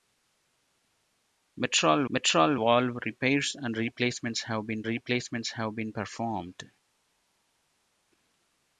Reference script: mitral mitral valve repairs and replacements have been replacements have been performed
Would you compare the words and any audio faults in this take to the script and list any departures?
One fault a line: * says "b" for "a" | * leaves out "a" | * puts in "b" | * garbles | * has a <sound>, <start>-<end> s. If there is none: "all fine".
all fine